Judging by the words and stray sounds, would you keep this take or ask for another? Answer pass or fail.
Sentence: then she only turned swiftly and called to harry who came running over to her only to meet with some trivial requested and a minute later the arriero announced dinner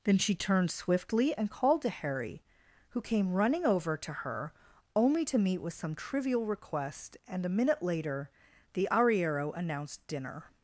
fail